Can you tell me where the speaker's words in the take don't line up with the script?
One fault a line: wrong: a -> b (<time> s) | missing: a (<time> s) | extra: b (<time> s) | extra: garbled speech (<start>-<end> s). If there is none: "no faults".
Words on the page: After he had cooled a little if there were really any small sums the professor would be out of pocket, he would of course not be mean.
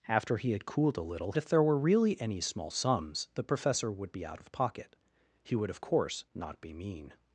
no faults